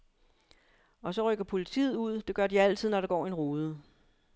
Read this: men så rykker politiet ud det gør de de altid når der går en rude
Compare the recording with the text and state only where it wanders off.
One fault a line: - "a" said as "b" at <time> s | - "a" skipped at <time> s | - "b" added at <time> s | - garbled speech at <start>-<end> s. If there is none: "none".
- "men" said as "og" at 1.0 s
- "de" skipped at 2.6 s